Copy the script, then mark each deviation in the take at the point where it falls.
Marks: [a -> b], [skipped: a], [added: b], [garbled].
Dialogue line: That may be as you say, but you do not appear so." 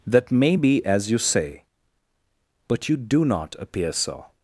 That may be as you say, but you do not appear so."